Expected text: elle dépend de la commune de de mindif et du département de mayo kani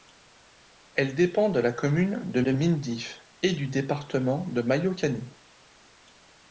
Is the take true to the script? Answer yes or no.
yes